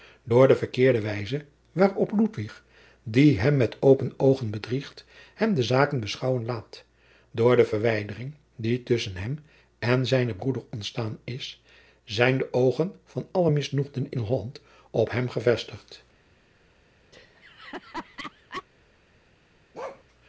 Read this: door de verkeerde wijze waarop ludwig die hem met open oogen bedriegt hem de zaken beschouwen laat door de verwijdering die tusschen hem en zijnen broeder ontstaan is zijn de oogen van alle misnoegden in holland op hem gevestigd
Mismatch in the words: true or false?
false